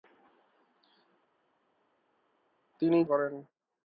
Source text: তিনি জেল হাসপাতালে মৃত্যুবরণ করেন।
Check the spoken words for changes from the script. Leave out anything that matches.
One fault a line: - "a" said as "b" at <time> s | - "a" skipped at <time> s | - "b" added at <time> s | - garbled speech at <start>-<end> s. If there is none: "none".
- "জেল হাসপাতালে মৃত্যুবরণ" skipped at 3.0 s